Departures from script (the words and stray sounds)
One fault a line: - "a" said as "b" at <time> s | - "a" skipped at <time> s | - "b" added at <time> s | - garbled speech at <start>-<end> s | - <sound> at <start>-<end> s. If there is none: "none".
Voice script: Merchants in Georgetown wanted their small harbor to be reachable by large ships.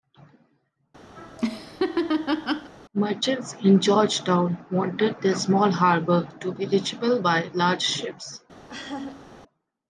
- laugh at 1.2-2.7 s
- laugh at 8.7-9.3 s